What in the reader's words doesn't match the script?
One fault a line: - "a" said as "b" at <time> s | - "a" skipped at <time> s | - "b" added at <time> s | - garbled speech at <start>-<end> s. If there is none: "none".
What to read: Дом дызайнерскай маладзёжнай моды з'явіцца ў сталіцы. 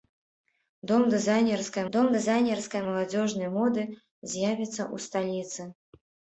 - "дом дызайнерскай" added at 2.0 s